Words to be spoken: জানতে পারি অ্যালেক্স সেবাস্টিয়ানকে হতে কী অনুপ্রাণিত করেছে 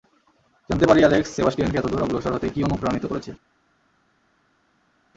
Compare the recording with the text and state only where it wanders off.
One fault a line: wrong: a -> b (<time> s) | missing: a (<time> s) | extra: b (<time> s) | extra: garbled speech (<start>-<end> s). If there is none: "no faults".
extra: এতদূর অগ্রসর (1.8 s)